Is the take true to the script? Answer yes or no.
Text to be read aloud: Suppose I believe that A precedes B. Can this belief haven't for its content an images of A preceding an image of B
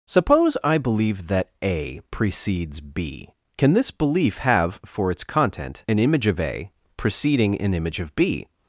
no